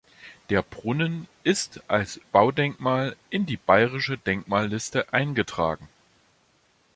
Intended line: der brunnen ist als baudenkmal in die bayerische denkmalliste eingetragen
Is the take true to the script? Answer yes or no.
yes